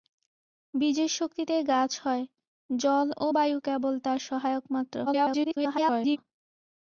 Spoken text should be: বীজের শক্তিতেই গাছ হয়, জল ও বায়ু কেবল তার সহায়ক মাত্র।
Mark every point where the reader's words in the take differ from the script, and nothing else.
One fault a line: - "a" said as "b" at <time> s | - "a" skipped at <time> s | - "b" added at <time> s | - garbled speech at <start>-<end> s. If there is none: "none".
- garbled speech at 5.1-6.2 s